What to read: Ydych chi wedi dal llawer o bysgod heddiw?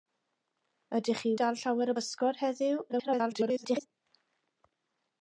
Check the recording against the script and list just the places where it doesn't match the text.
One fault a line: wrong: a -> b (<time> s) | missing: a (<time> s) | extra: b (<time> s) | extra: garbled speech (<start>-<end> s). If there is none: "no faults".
missing: wedi (1.3 s)
extra: garbled speech (2.9-3.9 s)